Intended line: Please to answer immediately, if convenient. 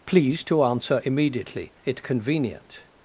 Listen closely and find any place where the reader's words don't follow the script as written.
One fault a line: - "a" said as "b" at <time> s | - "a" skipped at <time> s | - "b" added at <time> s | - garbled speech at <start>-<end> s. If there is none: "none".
- "if" said as "it" at 1.8 s